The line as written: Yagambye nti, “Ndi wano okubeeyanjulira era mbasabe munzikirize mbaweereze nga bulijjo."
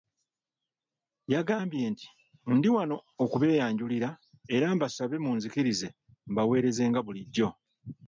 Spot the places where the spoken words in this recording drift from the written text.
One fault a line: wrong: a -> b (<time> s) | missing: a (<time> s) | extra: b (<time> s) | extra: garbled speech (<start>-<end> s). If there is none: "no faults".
no faults